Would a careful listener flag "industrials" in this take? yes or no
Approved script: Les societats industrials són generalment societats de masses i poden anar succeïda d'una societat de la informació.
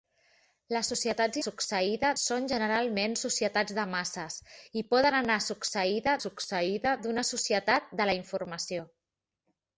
yes